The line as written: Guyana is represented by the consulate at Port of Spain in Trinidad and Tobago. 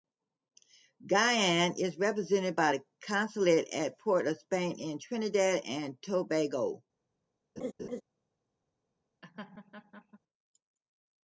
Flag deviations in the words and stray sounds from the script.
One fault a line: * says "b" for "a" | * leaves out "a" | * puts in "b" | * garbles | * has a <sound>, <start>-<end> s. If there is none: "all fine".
* has a laugh, 7.6-8.0 s
* has a laugh, 9.2-10.2 s